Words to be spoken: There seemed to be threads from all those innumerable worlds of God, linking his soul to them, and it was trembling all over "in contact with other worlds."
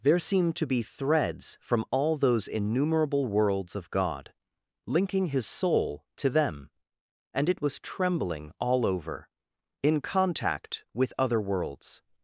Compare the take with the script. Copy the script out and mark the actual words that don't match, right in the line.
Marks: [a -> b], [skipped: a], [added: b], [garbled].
There seemed to be threads from all those innumerable worlds of God, linking his soul to them, and it was trembling all over "in contact with other worlds."